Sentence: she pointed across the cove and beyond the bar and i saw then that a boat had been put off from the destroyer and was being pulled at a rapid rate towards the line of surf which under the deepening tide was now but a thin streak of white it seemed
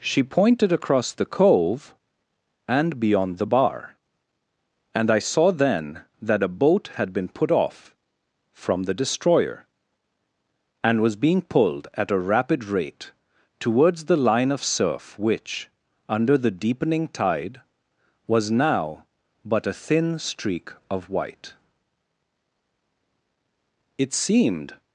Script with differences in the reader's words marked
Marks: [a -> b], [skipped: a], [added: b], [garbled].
she pointed across the cove and beyond the bar and i saw then that a boat had been put off from the destroyer and was being pulled at a rapid rate towards the line of surf which under the deepening tide was now but a thin streak of white it seemed